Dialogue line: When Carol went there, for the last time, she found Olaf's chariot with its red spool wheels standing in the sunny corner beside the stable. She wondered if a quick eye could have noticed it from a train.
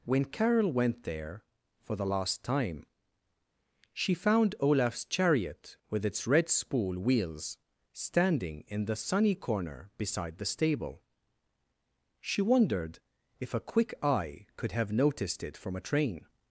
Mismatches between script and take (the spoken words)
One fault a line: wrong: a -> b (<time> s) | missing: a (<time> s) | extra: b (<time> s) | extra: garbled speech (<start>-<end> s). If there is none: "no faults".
no faults